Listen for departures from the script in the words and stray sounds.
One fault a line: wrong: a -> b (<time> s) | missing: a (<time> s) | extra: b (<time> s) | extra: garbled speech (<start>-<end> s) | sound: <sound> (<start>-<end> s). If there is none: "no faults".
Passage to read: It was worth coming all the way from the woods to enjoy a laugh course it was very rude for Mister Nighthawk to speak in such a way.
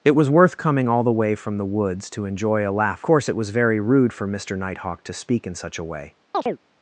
sound: chirp (6.3-6.6 s)